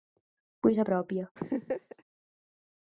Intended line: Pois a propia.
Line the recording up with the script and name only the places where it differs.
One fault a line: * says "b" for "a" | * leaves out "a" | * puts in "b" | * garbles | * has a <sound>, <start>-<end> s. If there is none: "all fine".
* has a laugh, 1.4-2.0 s